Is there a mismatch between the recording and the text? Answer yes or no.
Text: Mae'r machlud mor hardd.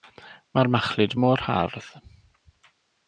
no